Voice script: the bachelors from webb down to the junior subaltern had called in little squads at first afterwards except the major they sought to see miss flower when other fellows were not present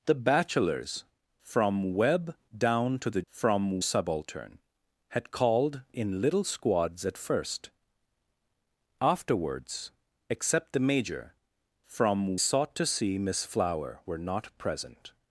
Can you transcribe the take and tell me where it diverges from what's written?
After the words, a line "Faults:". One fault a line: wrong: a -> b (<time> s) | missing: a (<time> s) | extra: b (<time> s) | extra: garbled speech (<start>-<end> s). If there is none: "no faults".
the bachelors from webb down to the from subaltern had called in little squads at first afterwards except the major from sought to see miss flower were not present
Faults:
wrong: junior -> from (3.3 s)
wrong: they -> from (11.8 s)
missing: when other fellows (14.0 s)